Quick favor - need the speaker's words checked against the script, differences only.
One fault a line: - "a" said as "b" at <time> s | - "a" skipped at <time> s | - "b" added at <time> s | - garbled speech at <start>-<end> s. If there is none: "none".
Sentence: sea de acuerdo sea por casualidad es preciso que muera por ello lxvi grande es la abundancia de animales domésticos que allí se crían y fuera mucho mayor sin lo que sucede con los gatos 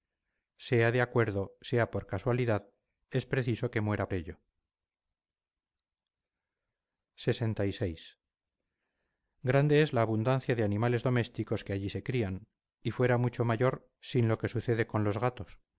- "por" skipped at 4.1 s